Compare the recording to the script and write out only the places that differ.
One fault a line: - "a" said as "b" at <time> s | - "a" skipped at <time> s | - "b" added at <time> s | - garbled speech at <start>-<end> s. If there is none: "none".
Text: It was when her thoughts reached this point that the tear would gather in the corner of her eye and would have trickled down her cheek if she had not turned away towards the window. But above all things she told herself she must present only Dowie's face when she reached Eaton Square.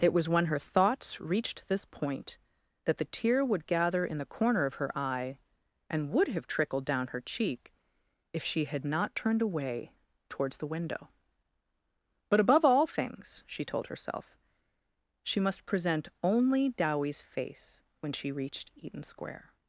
none